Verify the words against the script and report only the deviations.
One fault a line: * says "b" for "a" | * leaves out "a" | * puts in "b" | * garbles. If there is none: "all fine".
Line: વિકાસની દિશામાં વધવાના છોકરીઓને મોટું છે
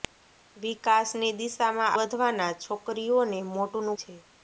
all fine